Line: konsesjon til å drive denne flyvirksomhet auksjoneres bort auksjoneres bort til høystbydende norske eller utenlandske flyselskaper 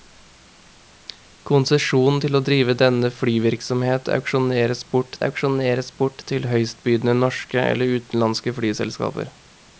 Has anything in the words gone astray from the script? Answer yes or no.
no